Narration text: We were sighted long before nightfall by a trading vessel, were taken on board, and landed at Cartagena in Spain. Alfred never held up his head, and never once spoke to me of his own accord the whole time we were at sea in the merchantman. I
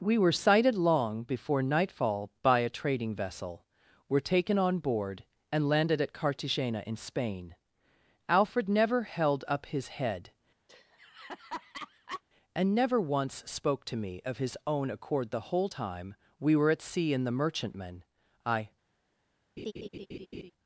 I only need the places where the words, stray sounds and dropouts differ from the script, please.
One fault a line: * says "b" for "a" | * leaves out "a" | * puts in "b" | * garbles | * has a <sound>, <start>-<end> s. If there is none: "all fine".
* has a laugh, 10.7-12.2 s
* has a laugh, 19.6-20.5 s